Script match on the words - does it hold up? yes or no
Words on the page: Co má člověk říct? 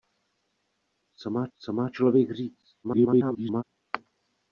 no